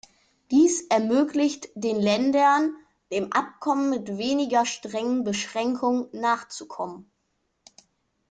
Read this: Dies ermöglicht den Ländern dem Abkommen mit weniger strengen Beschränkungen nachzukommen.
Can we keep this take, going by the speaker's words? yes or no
yes